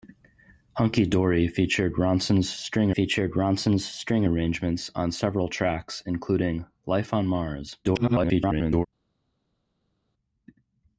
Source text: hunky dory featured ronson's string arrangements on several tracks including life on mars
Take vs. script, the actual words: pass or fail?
fail